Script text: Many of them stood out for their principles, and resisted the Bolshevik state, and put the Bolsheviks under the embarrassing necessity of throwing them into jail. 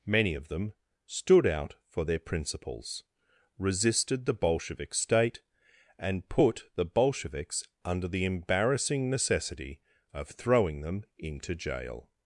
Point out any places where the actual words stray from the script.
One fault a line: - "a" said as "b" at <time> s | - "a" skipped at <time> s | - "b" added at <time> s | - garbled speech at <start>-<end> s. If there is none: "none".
- "and" skipped at 3.0 s